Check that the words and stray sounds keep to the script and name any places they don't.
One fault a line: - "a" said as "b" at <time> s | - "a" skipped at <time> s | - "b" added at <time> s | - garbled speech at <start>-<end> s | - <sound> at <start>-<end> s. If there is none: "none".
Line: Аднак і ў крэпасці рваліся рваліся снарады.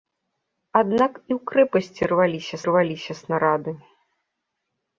none